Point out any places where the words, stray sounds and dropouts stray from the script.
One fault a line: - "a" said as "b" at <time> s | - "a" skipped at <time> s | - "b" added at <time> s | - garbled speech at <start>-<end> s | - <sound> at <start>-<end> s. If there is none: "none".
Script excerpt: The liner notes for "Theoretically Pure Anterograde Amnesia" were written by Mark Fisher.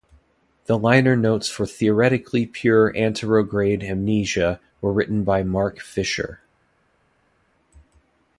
none